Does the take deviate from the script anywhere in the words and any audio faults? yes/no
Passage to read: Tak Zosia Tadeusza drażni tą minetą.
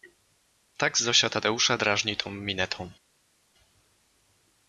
no